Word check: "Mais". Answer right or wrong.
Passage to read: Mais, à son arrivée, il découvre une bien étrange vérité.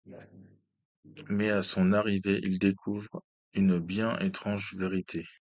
right